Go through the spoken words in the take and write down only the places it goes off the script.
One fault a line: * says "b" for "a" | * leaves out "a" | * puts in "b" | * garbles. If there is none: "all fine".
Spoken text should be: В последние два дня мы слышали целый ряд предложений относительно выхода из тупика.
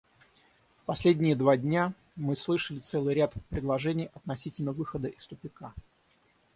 all fine